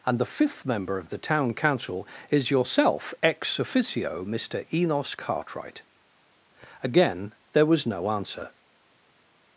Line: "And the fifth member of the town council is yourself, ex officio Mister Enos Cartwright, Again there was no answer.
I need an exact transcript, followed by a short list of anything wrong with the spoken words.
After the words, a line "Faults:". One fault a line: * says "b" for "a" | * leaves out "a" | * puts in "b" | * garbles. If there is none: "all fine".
"And the fifth member of the town council is yourself, ex officio Mister Enos Cartwright, Again there was no answer.
Faults:
all fine